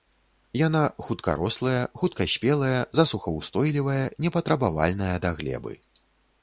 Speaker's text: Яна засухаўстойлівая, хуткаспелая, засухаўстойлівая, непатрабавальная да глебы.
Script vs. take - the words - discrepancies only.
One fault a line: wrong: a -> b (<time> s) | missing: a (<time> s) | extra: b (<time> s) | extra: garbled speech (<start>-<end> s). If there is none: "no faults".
wrong: засухаўстойлівая -> хуткарослая (1.1 s)